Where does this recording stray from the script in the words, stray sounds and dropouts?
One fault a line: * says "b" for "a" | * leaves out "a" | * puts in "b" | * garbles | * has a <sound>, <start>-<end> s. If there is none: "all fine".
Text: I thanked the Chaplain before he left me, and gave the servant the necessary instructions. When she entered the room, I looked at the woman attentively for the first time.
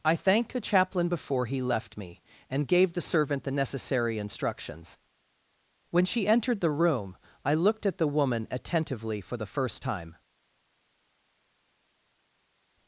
all fine